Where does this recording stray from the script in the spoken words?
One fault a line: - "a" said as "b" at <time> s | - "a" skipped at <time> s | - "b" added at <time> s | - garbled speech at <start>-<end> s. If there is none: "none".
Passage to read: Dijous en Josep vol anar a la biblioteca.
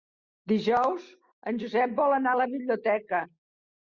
none